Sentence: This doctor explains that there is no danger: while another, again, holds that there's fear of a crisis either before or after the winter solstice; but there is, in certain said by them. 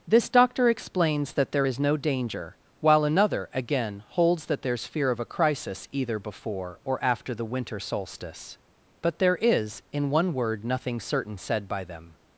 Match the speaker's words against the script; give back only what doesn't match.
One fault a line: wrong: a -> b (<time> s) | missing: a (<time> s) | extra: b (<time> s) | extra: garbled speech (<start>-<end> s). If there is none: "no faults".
extra: one word nothing (10.1 s)